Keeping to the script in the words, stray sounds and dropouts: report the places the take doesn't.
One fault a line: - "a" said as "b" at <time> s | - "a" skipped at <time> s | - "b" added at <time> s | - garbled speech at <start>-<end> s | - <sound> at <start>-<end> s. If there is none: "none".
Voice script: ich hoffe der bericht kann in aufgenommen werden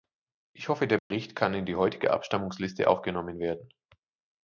- dropout at 1.0-1.1 s
- "die heutige abstimmungsliste" added at 1.6 s